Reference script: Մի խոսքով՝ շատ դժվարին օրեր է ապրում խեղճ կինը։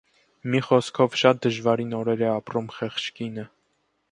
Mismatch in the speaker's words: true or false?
false